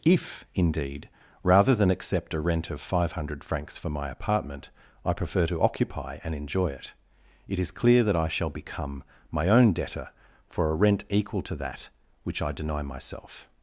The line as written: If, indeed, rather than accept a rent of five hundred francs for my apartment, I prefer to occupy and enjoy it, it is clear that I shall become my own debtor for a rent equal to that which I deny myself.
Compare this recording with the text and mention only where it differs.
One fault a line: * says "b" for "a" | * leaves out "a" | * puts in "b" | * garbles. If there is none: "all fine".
all fine